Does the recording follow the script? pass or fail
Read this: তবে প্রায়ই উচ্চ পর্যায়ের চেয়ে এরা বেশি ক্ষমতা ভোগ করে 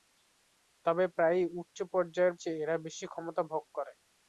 pass